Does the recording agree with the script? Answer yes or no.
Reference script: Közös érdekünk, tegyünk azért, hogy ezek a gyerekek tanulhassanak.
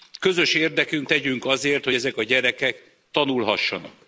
yes